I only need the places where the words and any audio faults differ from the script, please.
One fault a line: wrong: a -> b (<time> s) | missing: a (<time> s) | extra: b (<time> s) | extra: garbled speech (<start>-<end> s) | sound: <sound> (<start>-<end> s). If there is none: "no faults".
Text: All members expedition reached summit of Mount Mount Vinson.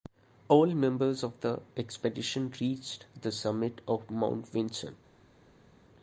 extra: of the (1.2 s)
extra: the (3.2 s)
missing: Mount (4.5 s)